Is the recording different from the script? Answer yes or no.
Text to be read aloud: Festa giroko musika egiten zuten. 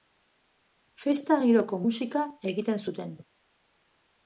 no